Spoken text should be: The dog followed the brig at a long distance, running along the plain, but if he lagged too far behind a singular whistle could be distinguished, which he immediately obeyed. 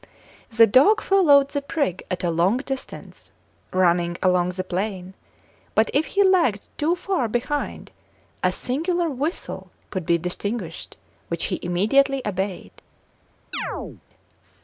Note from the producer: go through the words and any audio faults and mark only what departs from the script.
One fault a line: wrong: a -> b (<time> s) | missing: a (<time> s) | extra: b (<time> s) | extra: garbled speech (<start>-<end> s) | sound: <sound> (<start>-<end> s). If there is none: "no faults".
sound: chirp (13.5-14.0 s)